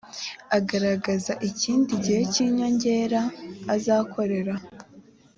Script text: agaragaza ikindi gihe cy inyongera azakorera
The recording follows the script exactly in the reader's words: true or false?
true